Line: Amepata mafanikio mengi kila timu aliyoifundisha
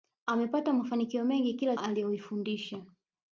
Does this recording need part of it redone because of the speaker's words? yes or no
yes